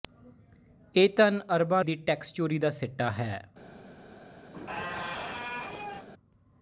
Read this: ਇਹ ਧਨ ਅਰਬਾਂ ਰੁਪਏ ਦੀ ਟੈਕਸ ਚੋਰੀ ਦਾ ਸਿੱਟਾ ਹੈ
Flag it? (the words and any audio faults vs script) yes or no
yes